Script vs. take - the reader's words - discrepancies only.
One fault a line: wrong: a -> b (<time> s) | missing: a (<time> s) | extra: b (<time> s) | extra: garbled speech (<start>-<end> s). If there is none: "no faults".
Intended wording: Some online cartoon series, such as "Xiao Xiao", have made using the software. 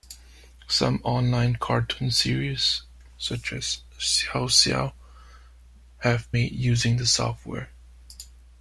no faults